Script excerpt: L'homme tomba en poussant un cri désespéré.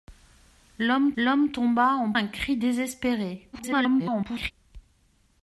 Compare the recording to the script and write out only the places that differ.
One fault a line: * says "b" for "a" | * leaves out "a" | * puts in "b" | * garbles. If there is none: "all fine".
* puts in "l'homme"
* leaves out "poussant"
* garbles